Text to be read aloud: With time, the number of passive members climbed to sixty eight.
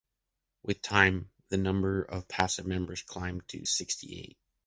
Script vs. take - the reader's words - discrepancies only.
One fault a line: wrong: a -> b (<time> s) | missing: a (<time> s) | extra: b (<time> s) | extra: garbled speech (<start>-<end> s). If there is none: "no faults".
no faults